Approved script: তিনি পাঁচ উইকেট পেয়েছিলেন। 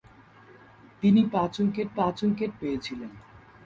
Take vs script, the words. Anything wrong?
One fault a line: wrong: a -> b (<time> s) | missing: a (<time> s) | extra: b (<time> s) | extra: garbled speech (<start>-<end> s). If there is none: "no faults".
extra: পাঁচ উইকেট (2.0 s)